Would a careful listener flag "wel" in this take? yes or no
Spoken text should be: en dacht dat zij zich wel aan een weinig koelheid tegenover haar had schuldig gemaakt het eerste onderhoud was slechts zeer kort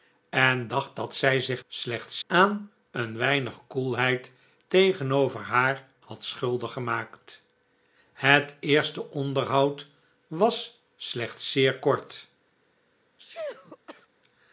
yes